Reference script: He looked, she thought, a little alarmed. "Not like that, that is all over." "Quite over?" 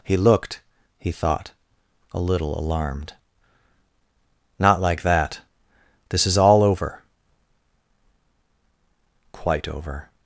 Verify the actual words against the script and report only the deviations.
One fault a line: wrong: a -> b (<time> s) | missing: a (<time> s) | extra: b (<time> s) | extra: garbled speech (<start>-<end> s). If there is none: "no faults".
wrong: she -> he (1.0 s)
wrong: that -> this (6.1 s)